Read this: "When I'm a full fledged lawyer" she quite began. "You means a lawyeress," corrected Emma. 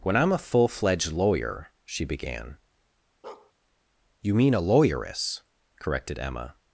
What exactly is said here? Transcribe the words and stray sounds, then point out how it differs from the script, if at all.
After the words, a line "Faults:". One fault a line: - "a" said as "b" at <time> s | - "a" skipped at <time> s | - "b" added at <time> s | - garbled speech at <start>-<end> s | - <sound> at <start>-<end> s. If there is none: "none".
"When I'm a full fledged lawyer" she began. "You mean a lawyeress," corrected Emma.
Faults:
- "quite" skipped at 2.0 s
- bark at 3.2-3.5 s
- "means" said as "mean" at 4.3 s